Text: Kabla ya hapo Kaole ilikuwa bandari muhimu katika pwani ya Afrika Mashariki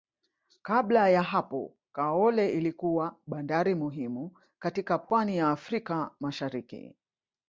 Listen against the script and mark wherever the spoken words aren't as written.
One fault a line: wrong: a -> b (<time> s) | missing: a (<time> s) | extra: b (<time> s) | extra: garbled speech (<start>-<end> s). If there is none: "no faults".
no faults